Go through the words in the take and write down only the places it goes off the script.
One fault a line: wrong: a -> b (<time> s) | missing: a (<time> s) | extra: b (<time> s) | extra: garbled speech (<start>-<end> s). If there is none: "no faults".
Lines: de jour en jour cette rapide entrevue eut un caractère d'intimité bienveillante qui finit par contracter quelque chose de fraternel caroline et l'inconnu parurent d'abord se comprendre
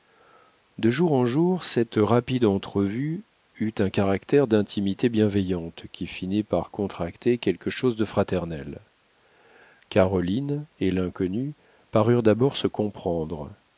no faults